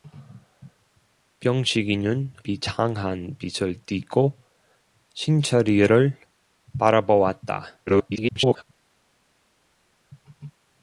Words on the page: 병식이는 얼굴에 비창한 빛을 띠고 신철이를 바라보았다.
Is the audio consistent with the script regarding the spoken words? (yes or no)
no